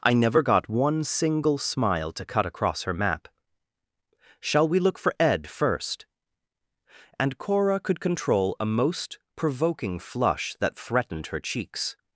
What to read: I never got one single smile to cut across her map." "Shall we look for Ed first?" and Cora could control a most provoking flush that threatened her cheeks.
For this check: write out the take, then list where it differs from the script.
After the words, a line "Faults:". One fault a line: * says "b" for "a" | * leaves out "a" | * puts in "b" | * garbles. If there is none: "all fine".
I never got one single smile to cut across her map." "Shall we look for Ed first?" and Cora could control a most provoking flush that threatened her cheeks.
Faults:
all fine